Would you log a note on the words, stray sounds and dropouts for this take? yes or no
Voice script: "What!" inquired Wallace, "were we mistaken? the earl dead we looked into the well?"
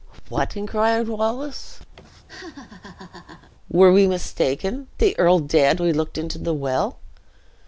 yes